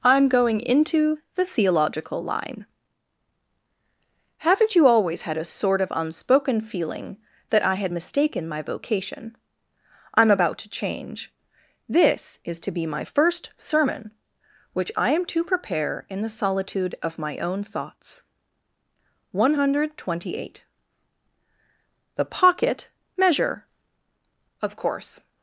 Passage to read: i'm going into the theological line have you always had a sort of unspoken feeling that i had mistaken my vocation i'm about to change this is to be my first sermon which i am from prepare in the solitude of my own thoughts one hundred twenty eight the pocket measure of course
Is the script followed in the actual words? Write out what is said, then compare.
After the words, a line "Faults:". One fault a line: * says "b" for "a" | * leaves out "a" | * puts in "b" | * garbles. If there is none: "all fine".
i'm going into the theological line haven't you always had a sort of unspoken feeling that i had mistaken my vocation i'm about to change this is to be my first sermon which i am to prepare in the solitude of my own thoughts one hundred twenty eight the pocket measure of course
Faults:
* says "haven't" for "have"
* says "to" for "from"